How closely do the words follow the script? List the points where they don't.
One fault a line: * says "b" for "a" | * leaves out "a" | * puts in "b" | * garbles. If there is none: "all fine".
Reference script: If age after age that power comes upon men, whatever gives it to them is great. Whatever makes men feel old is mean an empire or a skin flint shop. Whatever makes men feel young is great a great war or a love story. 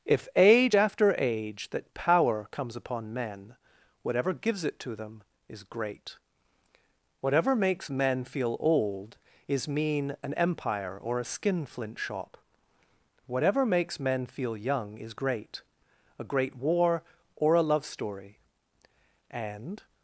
* puts in "And"